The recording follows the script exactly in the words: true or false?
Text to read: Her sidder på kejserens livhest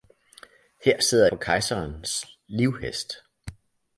true